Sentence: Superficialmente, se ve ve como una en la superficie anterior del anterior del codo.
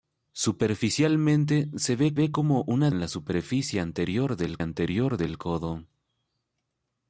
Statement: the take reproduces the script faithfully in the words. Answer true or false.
true